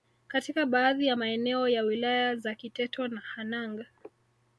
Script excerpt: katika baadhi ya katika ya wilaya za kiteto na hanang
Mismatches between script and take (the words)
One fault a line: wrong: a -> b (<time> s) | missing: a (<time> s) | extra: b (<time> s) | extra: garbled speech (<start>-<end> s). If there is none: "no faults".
wrong: katika -> maeneo (1.1 s)